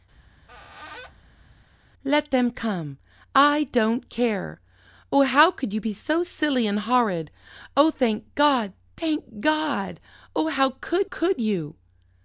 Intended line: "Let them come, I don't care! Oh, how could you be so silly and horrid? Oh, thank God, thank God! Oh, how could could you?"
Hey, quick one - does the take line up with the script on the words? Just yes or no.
yes